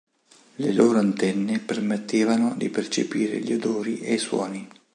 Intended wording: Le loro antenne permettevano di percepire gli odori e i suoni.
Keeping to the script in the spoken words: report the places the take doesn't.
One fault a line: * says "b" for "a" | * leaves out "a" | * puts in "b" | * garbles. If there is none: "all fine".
all fine